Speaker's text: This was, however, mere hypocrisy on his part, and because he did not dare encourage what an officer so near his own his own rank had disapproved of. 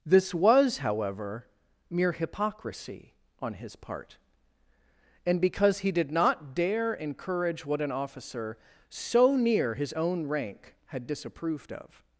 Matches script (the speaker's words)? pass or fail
fail